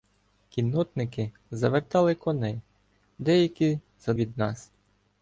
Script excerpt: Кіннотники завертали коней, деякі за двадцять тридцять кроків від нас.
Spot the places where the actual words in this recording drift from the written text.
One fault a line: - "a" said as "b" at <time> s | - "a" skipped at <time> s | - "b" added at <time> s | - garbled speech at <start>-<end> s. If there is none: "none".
- "двадцять тридцять кроків" skipped at 4.1 s